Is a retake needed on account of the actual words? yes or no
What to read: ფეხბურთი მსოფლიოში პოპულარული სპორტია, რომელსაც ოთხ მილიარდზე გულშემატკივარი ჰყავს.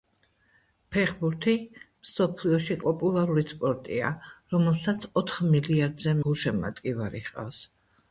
no